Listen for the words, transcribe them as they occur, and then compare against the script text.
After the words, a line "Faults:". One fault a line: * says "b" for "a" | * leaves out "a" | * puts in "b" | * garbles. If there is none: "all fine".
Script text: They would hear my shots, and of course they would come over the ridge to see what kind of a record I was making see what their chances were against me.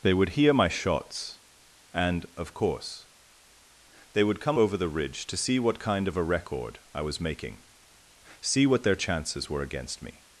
They would hear my shots, and of course they would come over the ridge to see what kind of a record I was making see what their chances were against me.
Faults:
all fine